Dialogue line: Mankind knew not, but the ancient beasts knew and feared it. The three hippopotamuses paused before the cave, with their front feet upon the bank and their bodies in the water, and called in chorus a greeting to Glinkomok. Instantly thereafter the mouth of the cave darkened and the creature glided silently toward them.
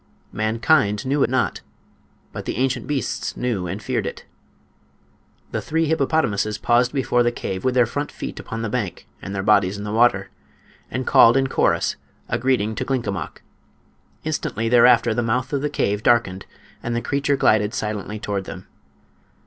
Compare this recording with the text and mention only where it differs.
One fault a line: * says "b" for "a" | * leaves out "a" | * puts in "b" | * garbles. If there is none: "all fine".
all fine